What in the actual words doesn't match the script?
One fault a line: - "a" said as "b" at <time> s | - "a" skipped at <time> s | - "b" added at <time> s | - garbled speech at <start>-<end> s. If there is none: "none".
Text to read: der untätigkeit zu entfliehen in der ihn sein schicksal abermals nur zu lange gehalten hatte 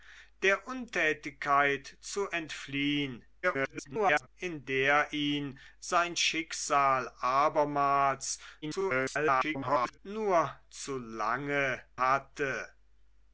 - garbled speech at 3.4-4.3 s
- garbled speech at 8.6-10.0 s
- "gehalten" skipped at 11.8 s